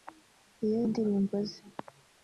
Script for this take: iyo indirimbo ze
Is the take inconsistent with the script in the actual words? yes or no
no